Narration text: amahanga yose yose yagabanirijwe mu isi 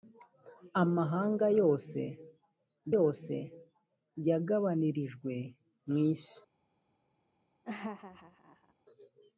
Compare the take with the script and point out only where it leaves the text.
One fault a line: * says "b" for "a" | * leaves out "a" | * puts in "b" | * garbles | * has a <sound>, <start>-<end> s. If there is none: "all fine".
* has a laugh, 7.6-8.7 s